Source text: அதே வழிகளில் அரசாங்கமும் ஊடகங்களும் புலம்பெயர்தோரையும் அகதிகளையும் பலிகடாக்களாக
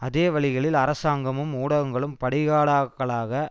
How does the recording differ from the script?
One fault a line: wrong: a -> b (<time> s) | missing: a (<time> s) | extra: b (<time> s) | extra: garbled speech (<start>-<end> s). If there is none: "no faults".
missing: புலம்பெயர்தோரையும் அகதிகளையும் (2.1 s)